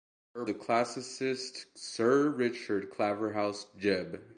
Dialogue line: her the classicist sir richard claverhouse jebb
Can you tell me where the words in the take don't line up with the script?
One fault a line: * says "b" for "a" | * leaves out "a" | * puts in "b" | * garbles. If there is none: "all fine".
all fine